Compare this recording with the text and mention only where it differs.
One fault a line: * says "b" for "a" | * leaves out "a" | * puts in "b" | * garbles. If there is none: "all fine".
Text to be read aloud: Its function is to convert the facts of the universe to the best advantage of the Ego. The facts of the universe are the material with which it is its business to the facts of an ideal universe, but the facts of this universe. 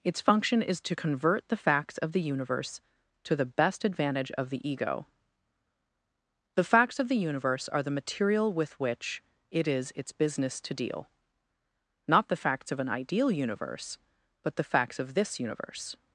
* puts in "deal not"